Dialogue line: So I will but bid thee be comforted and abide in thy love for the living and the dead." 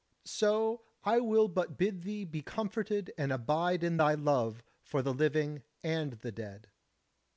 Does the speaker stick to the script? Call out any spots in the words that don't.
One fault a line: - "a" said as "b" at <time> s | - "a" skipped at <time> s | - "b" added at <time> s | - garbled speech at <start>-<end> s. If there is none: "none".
none